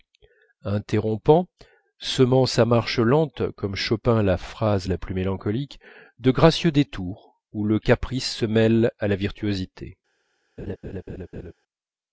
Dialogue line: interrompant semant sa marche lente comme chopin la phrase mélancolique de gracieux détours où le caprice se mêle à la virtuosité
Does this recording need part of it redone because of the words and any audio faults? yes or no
yes